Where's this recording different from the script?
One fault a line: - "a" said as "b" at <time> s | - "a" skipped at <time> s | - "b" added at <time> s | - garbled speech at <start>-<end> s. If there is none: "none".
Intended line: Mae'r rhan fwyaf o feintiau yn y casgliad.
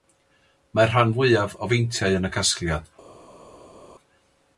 none